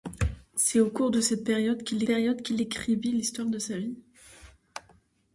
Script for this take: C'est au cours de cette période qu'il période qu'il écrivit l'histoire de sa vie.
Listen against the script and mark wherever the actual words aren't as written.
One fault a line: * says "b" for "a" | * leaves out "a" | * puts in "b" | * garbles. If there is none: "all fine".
all fine